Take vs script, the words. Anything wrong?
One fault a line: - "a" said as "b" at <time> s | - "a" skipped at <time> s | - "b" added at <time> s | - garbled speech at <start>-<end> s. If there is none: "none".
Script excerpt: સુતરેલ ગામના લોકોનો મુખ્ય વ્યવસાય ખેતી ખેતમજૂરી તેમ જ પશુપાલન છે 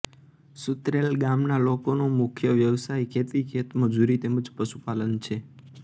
none